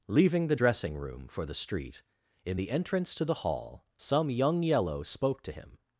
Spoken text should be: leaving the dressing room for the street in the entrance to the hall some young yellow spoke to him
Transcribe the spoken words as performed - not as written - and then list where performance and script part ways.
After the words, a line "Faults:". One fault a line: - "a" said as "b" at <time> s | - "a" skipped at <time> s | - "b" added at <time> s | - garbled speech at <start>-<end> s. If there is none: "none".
leaving the dressing room for the street in the entrance to the hall some young yellow spoke to him
Faults:
none